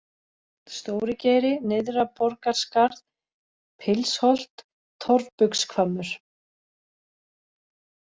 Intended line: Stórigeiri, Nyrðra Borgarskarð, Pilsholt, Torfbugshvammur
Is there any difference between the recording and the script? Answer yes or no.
no